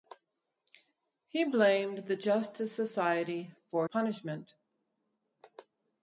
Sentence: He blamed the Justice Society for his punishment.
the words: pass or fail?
fail